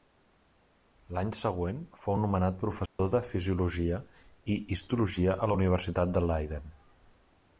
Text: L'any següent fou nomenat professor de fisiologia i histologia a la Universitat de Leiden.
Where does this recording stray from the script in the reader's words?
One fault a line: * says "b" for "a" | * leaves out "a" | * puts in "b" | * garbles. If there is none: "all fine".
all fine